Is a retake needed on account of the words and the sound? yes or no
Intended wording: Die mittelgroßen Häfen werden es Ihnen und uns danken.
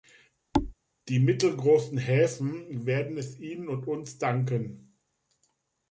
yes